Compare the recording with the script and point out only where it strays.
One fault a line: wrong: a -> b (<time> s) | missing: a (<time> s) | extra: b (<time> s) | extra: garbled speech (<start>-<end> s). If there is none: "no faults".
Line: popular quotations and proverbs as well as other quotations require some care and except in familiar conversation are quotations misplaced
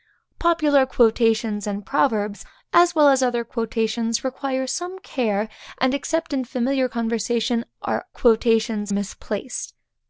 no faults